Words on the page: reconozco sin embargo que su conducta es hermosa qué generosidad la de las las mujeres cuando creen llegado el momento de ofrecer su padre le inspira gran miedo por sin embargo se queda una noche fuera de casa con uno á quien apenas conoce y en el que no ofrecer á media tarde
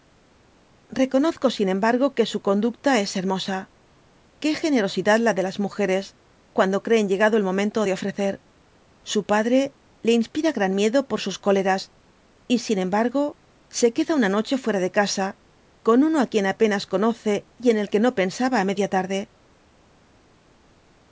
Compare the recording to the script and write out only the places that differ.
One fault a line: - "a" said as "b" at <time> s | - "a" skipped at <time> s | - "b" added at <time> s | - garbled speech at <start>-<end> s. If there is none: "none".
- "las" skipped at 5.6 s
- "sus cóleras y" added at 11.2 s
- "ofrecer" said as "pensaba" at 18.1 s